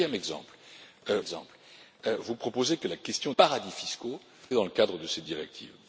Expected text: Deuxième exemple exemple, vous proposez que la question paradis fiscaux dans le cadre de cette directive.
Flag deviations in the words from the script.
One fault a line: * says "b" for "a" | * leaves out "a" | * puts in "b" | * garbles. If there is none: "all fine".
all fine